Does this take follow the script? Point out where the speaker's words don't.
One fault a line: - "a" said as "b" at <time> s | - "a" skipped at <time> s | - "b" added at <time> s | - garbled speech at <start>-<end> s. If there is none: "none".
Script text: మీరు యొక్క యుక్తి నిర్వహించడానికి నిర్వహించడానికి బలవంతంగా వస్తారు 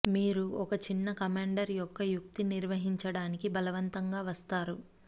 - "ఒక చిన్న కమాండర్" added at 0.5 s
- "నిర్వహించడానికి" skipped at 3.5 s